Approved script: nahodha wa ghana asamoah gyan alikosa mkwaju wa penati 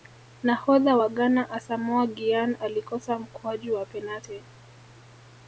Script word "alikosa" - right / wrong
right